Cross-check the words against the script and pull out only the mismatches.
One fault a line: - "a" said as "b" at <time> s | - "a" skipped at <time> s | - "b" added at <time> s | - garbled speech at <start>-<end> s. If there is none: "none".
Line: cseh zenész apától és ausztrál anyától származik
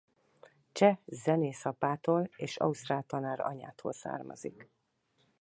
- "tanár" added at 3.0 s